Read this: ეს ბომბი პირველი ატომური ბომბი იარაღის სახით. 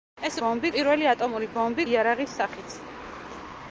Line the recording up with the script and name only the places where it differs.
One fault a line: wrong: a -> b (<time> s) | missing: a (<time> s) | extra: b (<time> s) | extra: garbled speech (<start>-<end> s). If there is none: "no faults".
no faults